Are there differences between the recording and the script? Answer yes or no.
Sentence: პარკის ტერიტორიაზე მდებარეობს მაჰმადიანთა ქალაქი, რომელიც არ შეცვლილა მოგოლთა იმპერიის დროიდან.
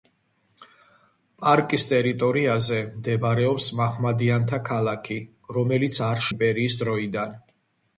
yes